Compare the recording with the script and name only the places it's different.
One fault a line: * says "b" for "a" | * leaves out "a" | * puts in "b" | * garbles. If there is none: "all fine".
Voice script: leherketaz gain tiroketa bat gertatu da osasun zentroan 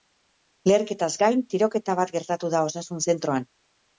all fine